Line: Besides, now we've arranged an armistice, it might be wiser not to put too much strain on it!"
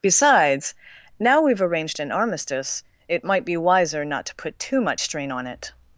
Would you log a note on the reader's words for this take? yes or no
no